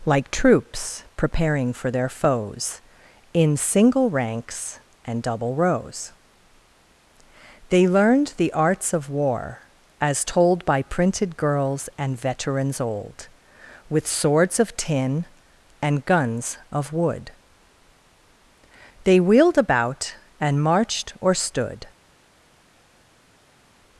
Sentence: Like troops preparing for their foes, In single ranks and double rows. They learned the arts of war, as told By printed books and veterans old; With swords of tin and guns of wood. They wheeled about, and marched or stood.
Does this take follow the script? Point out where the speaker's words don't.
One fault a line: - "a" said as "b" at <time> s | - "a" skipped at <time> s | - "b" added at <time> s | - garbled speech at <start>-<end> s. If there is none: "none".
- "books" said as "girls" at 11.4 s